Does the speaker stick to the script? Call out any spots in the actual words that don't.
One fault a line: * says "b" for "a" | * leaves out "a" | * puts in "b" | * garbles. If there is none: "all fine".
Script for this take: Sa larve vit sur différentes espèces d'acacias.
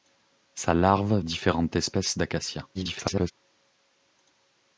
* leaves out "vit sur"
* garbles